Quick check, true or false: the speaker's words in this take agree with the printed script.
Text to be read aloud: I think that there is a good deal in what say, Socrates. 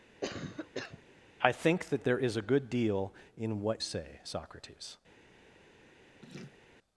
true